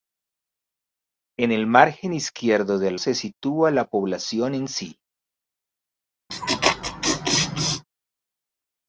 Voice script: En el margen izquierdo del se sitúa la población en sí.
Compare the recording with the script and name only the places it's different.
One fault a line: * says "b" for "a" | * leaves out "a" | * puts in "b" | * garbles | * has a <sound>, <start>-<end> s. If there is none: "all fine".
* has a laugh, 6.3-7.8 s